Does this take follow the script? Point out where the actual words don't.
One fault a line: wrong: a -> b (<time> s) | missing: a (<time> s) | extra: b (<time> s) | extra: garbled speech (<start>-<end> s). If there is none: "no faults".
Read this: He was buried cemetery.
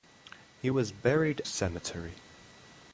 no faults